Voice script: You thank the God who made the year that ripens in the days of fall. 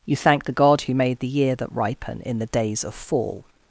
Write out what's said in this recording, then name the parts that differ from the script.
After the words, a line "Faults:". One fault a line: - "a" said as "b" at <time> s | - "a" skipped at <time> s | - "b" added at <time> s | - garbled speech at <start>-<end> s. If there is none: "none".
You thank the God who made the year that ripen in the days of fall.
Faults:
- "ripens" said as "ripen" at 1.7 s